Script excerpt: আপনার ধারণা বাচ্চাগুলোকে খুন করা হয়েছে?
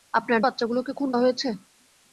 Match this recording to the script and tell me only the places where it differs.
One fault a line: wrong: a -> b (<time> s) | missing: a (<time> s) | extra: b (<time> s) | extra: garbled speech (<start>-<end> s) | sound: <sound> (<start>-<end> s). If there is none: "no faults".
missing: ধারণা (0.4 s)
missing: করা (1.1 s)